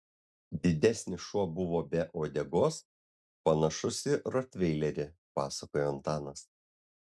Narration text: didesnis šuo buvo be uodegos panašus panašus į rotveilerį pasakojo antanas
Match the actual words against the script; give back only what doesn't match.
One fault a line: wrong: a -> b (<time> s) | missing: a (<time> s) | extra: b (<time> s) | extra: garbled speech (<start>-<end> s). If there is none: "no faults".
missing: panašus (4.0 s)